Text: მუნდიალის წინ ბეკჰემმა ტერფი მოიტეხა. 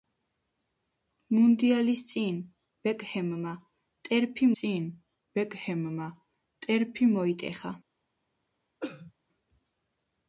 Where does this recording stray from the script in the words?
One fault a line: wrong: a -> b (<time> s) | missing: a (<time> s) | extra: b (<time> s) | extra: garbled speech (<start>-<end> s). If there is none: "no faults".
extra: წინ ბეკჰემმა ტერფი (4.6 s)